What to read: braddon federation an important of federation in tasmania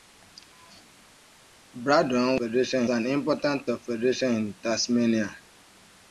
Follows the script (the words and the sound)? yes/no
yes